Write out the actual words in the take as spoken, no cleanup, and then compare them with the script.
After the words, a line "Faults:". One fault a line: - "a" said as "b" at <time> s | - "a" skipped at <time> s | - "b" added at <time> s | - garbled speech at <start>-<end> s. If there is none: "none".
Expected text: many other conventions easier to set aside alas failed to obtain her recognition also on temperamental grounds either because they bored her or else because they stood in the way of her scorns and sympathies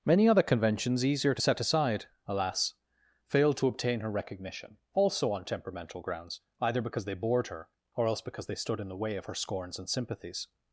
many other conventions easier to set aside alas failed to obtain her recognition also on temperamental grounds either because they bored her or else because they stood in the way of her scorns and sympathies
Faults:
none